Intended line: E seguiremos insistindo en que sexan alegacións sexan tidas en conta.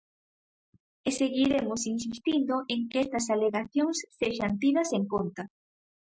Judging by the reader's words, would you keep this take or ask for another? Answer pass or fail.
fail